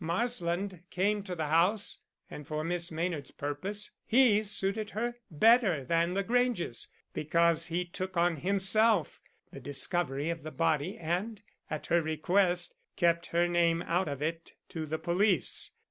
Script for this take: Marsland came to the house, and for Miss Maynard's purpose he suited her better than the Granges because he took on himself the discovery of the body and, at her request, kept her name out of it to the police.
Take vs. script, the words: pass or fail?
pass